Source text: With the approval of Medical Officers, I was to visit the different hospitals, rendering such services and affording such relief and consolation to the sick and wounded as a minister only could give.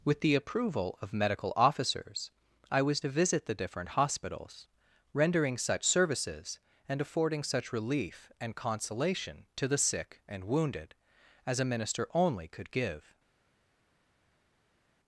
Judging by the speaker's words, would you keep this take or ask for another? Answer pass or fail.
pass